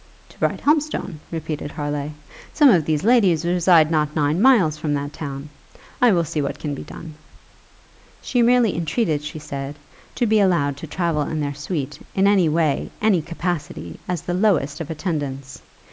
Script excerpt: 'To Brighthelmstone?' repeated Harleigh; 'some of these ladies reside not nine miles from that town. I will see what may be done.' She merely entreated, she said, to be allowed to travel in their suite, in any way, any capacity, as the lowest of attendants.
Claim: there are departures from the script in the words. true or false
true